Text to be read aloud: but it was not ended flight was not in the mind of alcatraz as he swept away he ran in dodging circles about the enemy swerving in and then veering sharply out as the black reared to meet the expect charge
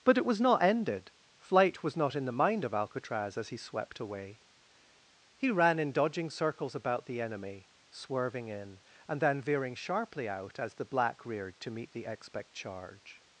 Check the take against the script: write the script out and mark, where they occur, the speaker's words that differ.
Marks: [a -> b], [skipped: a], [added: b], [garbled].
but it was not ended flight was not in the mind of alcatraz as he swept away he ran in dodging circles about the enemy swerving in and then veering sharply out as the black reared to meet the expect charge